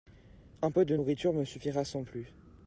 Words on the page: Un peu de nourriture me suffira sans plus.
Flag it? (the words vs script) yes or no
no